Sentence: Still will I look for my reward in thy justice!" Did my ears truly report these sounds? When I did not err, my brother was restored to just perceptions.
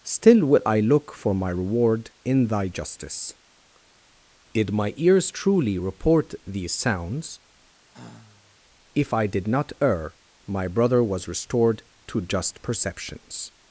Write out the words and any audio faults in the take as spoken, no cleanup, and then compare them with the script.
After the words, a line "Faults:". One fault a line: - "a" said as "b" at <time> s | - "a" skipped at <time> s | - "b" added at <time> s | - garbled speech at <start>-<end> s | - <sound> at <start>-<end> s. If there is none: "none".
Still will I look for my reward in thy justice!" Did my ears truly report these sounds? If I did not err, my brother was restored to just perceptions.
Faults:
- sigh at 7.9-8.6 s
- "When" said as "If" at 8.9 s